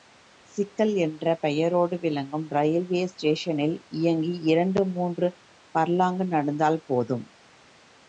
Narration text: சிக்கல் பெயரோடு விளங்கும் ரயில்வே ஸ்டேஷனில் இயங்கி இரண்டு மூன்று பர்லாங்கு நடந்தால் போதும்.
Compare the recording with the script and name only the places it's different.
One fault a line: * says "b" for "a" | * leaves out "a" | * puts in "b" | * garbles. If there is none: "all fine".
* puts in "என்ற"